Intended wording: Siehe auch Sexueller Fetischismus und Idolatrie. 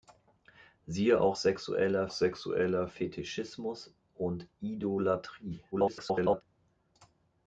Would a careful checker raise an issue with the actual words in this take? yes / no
yes